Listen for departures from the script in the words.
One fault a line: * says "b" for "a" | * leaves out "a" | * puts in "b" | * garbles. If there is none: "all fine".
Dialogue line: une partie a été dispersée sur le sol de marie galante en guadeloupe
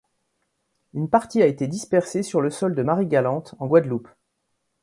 all fine